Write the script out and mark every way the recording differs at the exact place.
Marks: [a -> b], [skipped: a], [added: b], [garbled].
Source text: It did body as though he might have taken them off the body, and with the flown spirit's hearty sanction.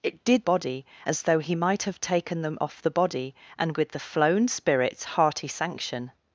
It did body as though he might have taken them off the body, and with the flown spirit's hearty sanction.